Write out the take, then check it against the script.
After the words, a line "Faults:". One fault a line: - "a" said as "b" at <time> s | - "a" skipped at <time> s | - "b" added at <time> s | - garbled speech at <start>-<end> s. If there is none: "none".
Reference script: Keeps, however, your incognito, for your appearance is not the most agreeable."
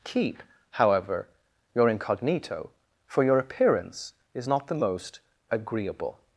Keep, however, your incognito, for your appearance is not the most agreeable."
Faults:
- "Keeps" said as "Keep" at 0.0 s